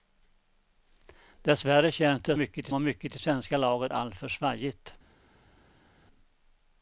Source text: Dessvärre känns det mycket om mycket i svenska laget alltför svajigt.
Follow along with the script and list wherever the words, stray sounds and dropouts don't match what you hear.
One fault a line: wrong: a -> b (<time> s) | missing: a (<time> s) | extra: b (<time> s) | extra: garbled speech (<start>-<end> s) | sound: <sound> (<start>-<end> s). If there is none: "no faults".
no faults